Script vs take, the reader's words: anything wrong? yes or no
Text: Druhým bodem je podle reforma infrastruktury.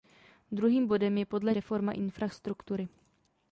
no